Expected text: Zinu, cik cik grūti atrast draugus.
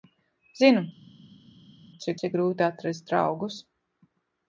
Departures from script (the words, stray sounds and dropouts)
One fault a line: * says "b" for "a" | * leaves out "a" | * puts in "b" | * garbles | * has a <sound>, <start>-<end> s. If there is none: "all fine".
all fine